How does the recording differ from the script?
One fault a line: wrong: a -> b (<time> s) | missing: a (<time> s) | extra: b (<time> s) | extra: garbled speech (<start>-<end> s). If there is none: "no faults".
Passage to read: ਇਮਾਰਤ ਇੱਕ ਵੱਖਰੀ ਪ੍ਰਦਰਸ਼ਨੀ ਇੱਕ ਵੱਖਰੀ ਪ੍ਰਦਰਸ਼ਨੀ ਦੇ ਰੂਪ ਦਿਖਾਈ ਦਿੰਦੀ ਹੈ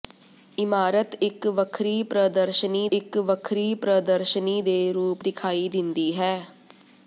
no faults